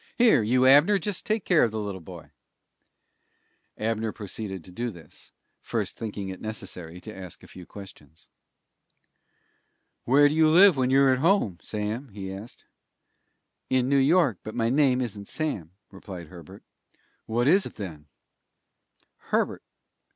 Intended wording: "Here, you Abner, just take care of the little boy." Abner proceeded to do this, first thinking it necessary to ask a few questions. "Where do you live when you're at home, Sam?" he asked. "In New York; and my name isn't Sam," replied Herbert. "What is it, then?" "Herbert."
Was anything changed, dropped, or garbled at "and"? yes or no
yes